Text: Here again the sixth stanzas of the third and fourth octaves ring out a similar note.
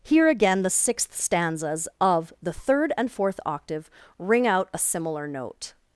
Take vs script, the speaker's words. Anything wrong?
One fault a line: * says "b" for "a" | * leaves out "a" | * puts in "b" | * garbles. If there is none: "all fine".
* says "octave" for "octaves"